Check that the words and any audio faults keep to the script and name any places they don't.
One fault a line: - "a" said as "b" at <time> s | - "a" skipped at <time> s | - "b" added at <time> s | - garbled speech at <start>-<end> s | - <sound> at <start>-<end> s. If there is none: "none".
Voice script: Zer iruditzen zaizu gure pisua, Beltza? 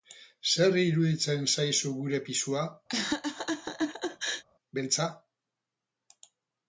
- laugh at 2.9-4.4 s